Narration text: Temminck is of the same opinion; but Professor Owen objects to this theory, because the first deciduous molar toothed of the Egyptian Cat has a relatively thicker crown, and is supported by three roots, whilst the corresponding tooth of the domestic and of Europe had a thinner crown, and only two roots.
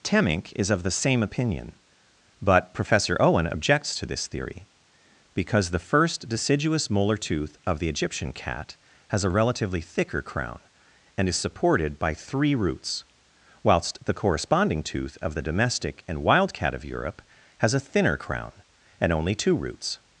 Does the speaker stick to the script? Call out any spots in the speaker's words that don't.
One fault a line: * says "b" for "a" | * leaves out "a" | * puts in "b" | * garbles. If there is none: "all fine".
* says "tooth" for "toothed"
* puts in "wild Cat"
* says "has" for "had"